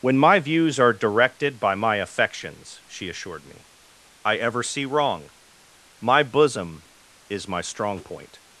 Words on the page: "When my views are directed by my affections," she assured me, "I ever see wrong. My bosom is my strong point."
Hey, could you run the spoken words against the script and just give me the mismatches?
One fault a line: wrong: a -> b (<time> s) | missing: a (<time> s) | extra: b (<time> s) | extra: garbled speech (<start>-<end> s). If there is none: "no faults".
no faults